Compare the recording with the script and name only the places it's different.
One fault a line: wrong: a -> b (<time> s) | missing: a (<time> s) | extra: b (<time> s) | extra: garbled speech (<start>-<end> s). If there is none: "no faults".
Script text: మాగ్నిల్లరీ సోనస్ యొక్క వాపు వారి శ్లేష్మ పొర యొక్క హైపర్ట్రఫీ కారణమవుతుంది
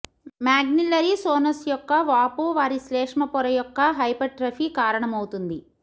no faults